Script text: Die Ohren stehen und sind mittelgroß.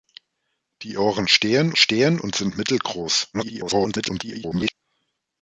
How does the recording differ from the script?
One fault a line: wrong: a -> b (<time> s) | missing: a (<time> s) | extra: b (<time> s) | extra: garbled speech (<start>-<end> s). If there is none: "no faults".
extra: stehen (1.7 s)
extra: garbled speech (3.3-4.7 s)